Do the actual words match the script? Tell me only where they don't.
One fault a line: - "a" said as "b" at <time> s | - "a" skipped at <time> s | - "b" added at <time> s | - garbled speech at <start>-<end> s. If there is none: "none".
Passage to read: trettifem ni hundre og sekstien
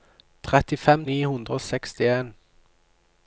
none